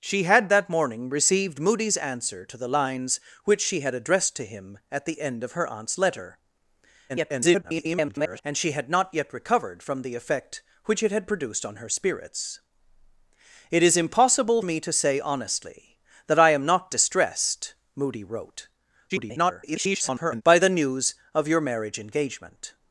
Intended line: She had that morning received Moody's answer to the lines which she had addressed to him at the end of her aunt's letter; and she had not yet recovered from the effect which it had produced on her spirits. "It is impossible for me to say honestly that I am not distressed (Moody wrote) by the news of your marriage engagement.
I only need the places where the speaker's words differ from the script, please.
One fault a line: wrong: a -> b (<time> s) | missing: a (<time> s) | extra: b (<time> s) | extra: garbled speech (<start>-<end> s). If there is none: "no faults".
extra: garbled speech (7.1-8.4 s)
missing: for (14.6 s)
extra: garbled speech (19.1-20.4 s)